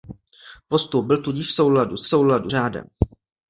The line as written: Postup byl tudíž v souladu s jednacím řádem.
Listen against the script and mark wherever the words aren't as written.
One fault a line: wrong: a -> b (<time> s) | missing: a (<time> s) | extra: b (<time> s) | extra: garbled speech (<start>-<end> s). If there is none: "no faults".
wrong: jednacím -> souladu (2.1 s)